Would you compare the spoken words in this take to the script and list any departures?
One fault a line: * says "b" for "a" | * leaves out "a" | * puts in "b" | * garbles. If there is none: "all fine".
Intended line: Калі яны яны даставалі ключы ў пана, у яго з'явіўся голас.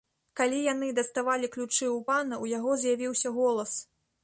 * leaves out "яны"